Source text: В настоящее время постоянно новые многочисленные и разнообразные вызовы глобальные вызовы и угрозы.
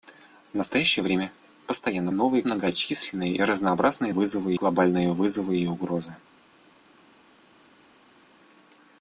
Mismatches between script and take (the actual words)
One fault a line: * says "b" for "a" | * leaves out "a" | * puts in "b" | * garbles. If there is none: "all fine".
all fine